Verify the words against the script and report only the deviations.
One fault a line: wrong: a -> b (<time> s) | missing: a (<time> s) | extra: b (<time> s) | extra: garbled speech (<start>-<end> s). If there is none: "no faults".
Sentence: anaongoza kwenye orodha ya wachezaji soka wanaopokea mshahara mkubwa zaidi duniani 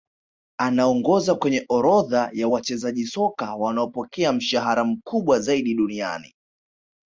no faults